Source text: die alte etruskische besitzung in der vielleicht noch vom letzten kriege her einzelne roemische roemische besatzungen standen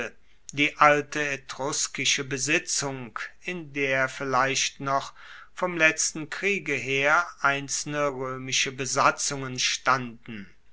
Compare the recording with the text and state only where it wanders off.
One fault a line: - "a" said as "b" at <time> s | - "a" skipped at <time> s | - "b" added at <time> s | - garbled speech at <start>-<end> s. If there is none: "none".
- "roemische" skipped at 8.7 s